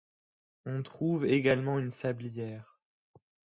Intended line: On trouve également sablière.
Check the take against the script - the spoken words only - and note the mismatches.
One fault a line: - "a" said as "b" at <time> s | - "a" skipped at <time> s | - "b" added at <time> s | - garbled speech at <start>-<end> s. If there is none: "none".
- "une" added at 1.8 s